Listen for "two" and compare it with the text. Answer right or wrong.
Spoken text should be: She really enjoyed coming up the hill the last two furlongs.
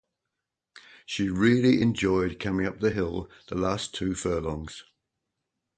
right